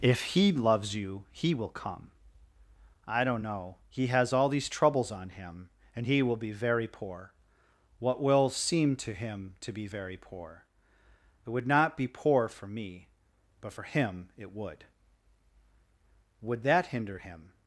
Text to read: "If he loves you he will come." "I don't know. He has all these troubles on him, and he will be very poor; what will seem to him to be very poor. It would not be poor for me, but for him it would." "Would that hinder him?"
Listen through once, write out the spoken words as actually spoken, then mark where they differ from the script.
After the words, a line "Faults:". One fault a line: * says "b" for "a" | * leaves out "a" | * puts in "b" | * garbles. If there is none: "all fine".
"If he loves you he will come." "I don't know. He has all these troubles on him, and he will be very poor; what will seem to him to be very poor. It would not be poor for me, but for him it would." "Would that hinder him?"
Faults:
all fine